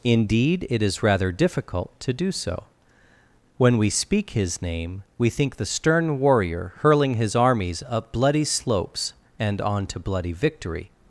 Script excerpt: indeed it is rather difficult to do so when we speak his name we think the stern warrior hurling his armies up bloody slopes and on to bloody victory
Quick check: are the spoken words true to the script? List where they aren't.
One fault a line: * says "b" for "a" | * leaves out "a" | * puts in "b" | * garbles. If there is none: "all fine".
all fine